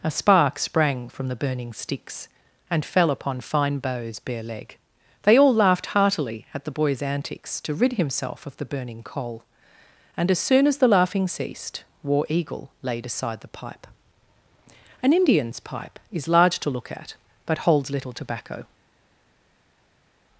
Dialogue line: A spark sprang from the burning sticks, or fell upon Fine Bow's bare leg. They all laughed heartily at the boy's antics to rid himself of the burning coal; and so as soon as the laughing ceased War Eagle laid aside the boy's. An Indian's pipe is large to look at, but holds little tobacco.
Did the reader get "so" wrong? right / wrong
wrong